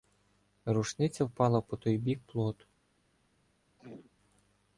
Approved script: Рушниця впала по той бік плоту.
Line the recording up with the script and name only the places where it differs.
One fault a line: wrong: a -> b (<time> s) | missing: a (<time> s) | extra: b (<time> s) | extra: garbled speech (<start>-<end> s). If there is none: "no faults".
no faults